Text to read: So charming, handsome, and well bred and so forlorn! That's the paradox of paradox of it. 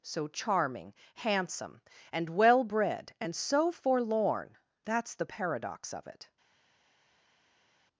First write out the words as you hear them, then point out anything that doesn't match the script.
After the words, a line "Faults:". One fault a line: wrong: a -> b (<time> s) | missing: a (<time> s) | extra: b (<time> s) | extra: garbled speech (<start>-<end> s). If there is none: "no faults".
So charming, handsome, and well bred and so forlorn! That's the paradox of it.
Faults:
missing: paradox of (6.1 s)